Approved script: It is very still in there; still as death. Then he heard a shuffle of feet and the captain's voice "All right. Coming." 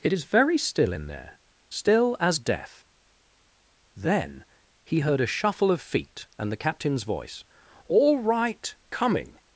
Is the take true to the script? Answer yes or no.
yes